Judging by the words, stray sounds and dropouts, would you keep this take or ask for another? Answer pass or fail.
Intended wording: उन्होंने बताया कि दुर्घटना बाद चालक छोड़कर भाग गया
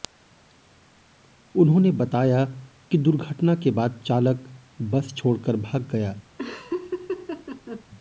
fail